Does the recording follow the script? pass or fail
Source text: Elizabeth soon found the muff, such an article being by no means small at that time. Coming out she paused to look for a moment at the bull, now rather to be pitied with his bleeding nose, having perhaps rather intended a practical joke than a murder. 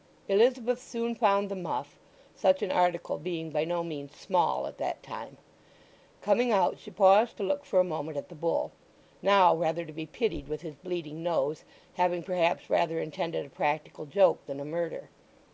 pass